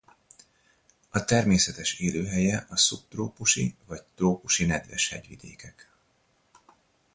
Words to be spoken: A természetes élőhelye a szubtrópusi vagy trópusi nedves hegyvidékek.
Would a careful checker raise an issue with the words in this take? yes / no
no